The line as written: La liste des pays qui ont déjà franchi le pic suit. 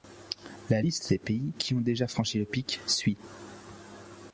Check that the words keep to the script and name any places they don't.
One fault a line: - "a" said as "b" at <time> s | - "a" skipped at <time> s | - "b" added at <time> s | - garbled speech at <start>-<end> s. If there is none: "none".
none